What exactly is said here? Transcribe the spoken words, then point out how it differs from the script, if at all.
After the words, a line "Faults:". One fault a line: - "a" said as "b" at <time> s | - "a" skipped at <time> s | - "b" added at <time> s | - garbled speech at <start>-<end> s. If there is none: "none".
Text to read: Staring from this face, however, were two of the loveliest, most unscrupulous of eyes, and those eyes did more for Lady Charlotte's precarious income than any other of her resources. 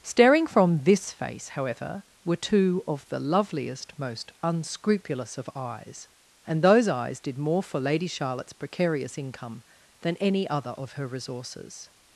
Staring from this face, however, were two of the loveliest, most unscrupulous of eyes, and those eyes did more for Lady Charlotte's precarious income than any other of her resources.
Faults:
none